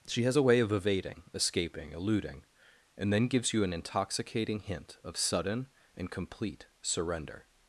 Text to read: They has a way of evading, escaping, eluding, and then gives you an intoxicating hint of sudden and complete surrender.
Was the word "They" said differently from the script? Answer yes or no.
yes